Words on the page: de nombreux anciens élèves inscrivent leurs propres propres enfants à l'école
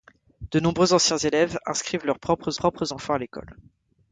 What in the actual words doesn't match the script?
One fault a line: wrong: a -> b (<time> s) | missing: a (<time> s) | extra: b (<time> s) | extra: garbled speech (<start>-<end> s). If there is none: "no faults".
no faults